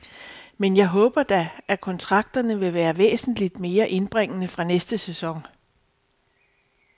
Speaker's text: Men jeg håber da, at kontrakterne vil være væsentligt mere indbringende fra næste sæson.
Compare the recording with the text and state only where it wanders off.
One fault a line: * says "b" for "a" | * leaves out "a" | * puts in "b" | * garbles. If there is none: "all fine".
all fine